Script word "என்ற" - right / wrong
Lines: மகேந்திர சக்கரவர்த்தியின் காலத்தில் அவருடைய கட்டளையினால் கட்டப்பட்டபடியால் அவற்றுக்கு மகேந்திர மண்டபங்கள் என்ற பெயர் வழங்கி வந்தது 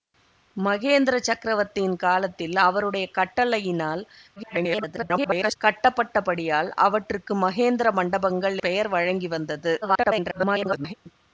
wrong